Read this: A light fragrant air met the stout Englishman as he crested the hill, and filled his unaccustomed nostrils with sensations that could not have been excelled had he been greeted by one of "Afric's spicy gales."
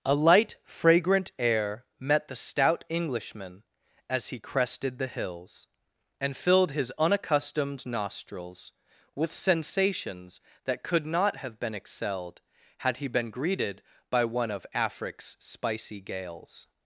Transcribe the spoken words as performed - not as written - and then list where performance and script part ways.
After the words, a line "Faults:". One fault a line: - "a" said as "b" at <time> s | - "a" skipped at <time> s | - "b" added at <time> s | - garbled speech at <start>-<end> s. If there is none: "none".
A light fragrant air met the stout Englishman as he crested the hills, and filled his unaccustomed nostrils with sensations that could not have been excelled had he been greeted by one of "Afric's spicy gales."
Faults:
- "hill" said as "hills" at 5.1 s